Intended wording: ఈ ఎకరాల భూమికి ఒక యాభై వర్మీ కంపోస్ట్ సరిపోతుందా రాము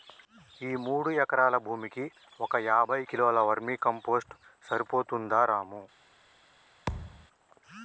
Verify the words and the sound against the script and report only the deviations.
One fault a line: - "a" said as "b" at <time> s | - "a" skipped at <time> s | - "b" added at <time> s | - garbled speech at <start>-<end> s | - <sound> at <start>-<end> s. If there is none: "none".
- "మూడు" added at 0.8 s
- "కిలోల" added at 3.0 s
- thud at 6.9-7.3 s